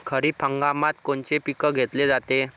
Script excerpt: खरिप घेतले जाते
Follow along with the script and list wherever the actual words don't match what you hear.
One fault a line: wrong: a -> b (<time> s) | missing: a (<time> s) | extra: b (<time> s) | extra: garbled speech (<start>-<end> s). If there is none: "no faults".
extra: हंगामात कोनचे पिकं (0.4 s)